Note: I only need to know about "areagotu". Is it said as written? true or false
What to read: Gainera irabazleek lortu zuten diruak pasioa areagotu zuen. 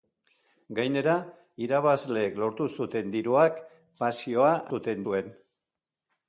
false